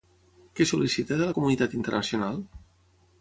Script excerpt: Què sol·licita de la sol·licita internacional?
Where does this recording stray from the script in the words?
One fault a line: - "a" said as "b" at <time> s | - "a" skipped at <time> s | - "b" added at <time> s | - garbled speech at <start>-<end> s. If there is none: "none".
- "sol·licita" said as "comunitat" at 1.4 s